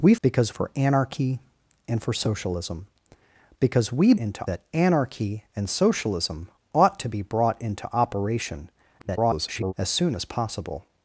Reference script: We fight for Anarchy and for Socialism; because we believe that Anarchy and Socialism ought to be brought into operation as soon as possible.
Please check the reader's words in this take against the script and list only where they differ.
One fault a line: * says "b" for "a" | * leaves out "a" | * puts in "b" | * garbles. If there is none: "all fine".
* says "because" for "fight"
* says "into" for "believe"
* garbles